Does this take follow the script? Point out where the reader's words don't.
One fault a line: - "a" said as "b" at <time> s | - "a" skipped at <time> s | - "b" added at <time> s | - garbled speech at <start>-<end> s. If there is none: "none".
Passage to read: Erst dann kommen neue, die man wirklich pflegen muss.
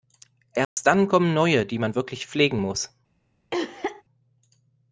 none